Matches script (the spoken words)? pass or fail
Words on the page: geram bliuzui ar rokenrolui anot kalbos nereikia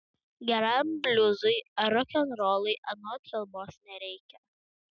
pass